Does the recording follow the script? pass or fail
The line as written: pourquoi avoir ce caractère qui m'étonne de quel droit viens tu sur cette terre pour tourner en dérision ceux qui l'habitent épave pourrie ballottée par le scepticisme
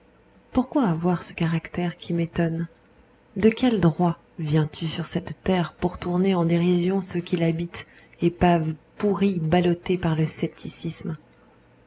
pass